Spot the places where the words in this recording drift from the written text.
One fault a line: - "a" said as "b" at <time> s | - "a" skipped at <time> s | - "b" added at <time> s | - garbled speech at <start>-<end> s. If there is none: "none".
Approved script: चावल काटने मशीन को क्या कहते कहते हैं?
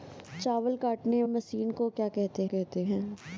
none